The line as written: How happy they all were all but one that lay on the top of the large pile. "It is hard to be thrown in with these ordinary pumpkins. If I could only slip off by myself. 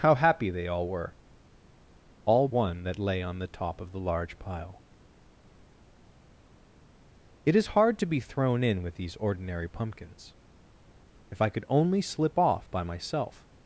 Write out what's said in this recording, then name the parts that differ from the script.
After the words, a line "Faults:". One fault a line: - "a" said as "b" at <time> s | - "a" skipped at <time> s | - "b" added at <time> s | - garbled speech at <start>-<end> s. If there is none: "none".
How happy they all were all one that lay on the top of the large pile. "It is hard to be thrown in with these ordinary pumpkins. If I could only slip off by myself.
Faults:
- "but" skipped at 2.5 s